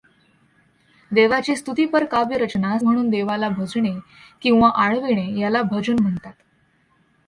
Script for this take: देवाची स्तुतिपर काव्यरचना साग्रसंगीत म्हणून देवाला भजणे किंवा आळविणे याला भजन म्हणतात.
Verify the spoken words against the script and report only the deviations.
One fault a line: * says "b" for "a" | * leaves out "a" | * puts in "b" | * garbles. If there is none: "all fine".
* leaves out "साग्रसंगीत"